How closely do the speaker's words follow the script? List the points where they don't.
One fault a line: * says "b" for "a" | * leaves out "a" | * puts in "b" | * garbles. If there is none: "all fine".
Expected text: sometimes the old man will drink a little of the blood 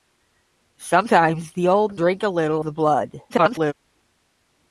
* leaves out "man will"
* leaves out "of"
* garbles